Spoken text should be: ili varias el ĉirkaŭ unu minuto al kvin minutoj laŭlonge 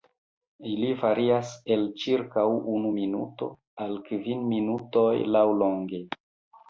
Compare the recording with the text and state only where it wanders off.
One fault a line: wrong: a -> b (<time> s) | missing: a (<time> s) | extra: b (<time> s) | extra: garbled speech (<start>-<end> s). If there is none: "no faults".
no faults